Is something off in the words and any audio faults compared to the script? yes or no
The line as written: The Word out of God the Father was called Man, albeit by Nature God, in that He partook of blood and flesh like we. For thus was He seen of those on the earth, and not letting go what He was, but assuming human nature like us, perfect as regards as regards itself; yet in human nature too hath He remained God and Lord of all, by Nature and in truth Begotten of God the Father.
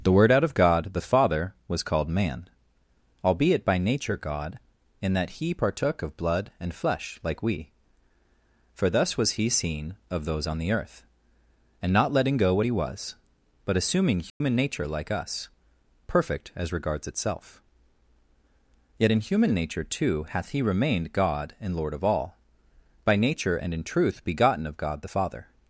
yes